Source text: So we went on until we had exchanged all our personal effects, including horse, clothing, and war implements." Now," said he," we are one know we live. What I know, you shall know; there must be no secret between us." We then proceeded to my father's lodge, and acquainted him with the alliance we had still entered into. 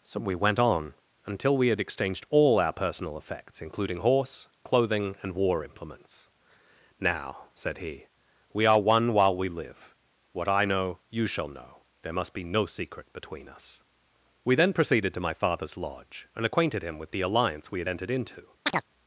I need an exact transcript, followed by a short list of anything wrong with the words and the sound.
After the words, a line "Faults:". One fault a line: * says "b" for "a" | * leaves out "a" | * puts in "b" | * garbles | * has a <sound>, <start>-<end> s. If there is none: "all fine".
So we went on until we had exchanged all our personal effects, including horse, clothing, and war implements." Now," said he," we are one while we live. What I know, you shall know; there must be no secret between us." We then proceeded to my father's lodge, and acquainted him with the alliance we had entered into.
Faults:
* says "while" for "know"
* leaves out "still"
* has a chirp, 18.7-18.8 s